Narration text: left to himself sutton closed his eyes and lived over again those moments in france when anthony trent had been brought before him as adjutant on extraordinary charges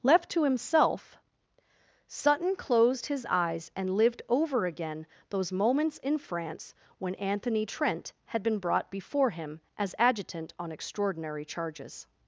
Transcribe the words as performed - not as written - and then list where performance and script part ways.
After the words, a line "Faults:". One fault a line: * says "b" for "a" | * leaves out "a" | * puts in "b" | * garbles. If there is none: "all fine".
left to himself sutton closed his eyes and lived over again those moments in france when anthony trent had been brought before him as adjutant on extraordinary charges
Faults:
all fine